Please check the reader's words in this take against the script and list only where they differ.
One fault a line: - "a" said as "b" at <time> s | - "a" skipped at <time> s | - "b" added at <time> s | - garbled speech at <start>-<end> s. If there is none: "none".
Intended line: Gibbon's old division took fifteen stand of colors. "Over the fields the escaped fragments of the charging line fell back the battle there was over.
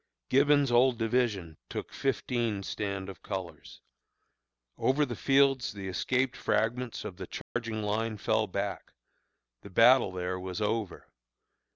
none